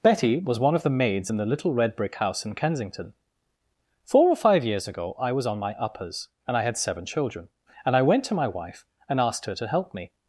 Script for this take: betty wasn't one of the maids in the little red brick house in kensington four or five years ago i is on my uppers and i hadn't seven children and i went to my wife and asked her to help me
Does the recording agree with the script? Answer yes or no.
no